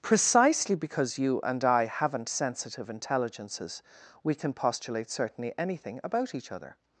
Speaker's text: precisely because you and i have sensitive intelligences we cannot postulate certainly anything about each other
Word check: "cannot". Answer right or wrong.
wrong